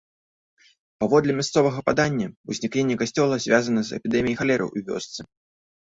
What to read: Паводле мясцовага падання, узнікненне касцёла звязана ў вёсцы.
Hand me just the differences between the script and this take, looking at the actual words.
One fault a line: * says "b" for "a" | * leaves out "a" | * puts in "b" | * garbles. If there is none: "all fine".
* puts in "з эпідэміяй халеры"